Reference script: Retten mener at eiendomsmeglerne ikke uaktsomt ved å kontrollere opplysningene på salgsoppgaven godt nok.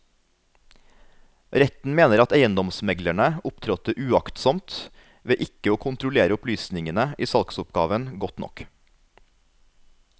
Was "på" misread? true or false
true